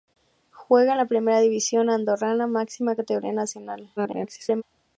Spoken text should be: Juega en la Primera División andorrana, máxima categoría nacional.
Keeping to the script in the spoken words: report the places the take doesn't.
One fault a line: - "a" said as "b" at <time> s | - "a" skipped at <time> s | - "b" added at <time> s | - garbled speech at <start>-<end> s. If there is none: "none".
- garbled speech at 4.0-4.6 s